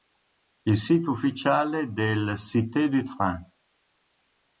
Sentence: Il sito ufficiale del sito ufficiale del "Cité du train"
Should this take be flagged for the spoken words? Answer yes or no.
yes